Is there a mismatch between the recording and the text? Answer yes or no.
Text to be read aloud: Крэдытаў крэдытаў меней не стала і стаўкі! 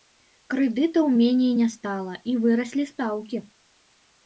yes